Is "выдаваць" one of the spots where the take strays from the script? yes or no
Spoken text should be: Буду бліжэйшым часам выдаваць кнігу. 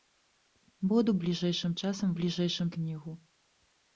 yes